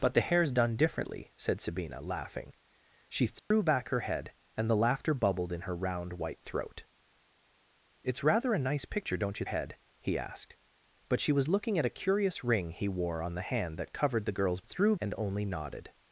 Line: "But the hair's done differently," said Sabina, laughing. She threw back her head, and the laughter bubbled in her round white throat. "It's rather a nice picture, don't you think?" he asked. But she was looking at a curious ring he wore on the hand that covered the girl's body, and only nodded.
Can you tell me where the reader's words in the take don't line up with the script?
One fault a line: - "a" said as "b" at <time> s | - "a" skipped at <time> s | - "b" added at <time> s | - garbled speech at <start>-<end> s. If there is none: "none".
- "think" said as "head" at 9.4 s
- "body" said as "threw" at 14.6 s